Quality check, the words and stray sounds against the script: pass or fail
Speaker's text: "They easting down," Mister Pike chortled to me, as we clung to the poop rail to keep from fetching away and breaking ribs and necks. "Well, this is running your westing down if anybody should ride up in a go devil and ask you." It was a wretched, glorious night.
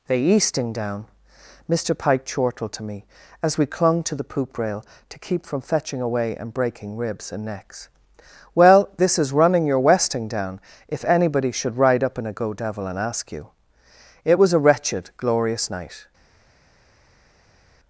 pass